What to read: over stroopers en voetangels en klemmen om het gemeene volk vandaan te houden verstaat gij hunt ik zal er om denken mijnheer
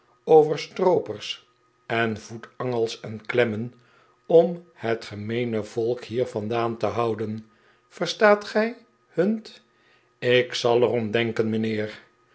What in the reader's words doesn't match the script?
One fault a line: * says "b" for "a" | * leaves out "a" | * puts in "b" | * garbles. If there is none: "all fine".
* puts in "hier"